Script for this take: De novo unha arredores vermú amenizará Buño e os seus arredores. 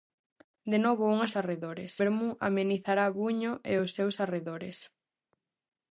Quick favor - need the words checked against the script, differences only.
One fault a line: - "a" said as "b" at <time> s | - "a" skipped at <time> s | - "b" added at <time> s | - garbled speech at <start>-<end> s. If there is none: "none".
none